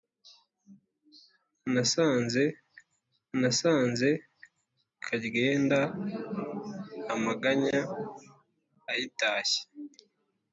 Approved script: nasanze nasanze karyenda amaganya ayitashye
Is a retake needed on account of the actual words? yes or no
no